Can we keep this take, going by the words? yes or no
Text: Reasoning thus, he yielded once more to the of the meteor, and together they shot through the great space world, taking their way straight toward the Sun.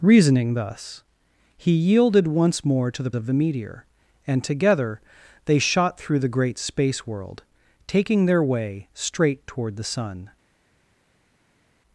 yes